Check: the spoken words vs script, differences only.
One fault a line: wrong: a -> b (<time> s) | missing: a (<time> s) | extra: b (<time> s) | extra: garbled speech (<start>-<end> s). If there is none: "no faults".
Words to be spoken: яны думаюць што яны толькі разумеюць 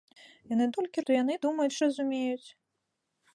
wrong: думаюць -> толькі (0.8 s)
wrong: толькі -> думаюць (1.5 s)